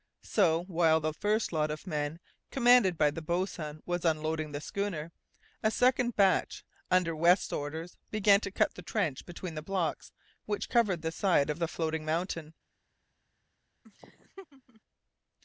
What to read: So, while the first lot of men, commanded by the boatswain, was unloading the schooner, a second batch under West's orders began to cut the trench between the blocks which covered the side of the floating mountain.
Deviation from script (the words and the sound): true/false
true